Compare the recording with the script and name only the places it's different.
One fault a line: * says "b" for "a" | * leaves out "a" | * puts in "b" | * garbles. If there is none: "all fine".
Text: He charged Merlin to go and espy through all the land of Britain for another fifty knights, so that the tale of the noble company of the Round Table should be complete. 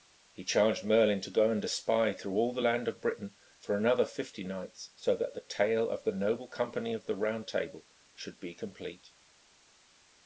all fine